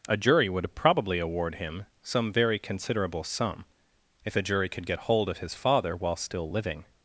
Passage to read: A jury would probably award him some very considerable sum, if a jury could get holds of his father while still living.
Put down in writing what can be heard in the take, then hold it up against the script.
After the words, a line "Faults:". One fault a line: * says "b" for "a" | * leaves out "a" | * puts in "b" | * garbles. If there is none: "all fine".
A jury would probably award him some very considerable sum, if a jury could get hold of his father while still living.
Faults:
* says "hold" for "holds"